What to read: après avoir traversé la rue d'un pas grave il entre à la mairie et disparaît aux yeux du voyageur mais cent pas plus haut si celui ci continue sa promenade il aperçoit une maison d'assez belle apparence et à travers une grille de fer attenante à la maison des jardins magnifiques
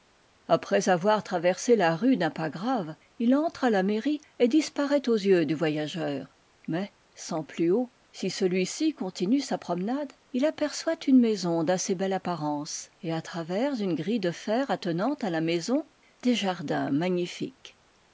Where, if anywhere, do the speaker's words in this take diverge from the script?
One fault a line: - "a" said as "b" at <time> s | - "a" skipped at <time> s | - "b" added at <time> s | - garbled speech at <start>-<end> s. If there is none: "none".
- "pas" skipped at 7.4 s